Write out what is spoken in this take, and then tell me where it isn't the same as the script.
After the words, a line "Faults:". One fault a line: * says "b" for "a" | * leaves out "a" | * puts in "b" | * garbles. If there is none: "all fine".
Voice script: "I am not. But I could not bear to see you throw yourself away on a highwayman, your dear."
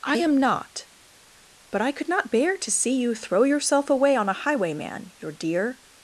"I am not. But I could not bear to see you throw yourself away on a highwayman, your dear."
Faults:
all fine